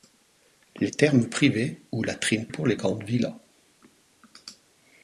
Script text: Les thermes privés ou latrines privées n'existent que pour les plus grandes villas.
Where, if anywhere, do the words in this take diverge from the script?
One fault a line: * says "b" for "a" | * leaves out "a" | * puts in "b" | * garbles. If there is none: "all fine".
* leaves out "privées n'existent que"
* leaves out "plus"